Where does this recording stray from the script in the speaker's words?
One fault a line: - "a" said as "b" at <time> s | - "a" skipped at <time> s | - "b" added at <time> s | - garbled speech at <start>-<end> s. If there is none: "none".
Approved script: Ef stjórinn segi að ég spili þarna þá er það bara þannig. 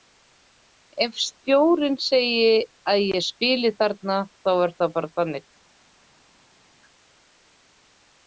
none